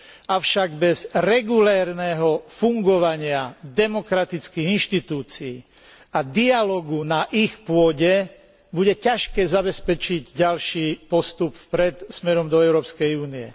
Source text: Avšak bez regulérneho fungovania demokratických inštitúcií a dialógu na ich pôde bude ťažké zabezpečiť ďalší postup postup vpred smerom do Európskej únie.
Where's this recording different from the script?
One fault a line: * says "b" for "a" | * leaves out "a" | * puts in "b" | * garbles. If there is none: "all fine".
* leaves out "postup"